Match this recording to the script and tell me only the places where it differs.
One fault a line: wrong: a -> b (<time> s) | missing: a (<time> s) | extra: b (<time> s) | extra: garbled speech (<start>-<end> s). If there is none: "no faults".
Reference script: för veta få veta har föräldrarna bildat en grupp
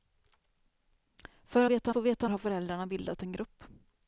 no faults